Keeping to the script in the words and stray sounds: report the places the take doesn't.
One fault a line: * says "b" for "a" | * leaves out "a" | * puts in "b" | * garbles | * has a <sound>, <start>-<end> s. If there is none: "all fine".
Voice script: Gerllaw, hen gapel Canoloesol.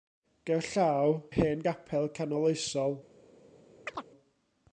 * has a chirp, 3.9-4.1 s